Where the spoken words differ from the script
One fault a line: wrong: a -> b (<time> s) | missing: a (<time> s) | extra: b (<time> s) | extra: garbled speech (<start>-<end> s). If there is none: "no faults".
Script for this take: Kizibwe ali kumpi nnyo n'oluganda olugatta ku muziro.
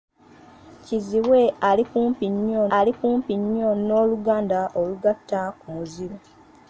extra: ali kumpi nnyo (2.8 s)